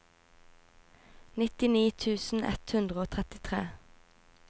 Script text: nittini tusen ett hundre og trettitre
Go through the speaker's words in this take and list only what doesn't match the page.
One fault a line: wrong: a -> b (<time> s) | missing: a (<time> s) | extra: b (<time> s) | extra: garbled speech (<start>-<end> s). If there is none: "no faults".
no faults